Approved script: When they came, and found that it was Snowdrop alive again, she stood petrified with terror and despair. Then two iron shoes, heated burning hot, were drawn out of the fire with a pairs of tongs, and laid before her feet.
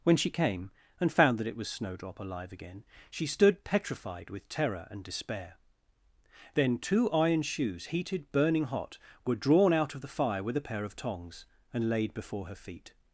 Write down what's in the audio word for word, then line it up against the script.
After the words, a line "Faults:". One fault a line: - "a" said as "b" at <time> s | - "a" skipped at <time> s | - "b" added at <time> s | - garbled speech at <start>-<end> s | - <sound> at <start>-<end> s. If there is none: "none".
When she came, and found that it was Snowdrop alive again, she stood petrified with terror and despair. Then two iron shoes, heated burning hot, were drawn out of the fire with a pair of tongs, and laid before her feet.
Faults:
- "they" said as "she" at 0.2 s
- "pairs" said as "pair" at 10.6 s